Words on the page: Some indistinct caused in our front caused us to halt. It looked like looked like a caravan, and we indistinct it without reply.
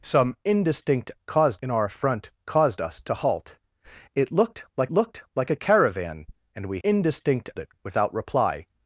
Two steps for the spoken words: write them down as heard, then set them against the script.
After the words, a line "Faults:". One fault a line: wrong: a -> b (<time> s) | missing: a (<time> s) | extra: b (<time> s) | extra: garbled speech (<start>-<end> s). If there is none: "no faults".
Some indistinct caused in our front caused us to halt. It looked like looked like a caravan, and we indistinct it without reply.
Faults:
no faults